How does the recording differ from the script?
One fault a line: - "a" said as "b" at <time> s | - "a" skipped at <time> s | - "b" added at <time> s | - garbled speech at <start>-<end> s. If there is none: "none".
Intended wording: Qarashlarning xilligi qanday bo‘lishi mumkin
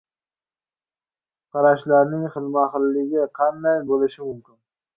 - "xilma" added at 2.4 s